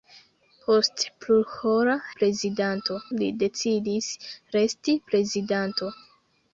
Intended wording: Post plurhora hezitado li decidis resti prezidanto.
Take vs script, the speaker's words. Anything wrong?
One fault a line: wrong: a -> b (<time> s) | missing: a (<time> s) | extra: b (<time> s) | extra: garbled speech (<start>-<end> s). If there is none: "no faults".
wrong: hezitado -> prezidanto (2.2 s)